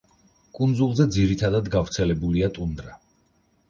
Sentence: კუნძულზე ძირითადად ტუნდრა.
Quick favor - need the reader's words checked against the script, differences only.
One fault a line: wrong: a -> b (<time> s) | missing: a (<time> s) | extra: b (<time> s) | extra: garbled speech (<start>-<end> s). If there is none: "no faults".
extra: გავრცელებულია (1.8 s)